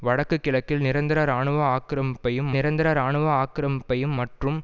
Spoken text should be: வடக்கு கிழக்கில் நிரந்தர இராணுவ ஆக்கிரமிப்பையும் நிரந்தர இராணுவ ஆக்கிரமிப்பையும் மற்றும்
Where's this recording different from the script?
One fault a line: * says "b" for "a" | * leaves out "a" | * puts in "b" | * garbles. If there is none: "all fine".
all fine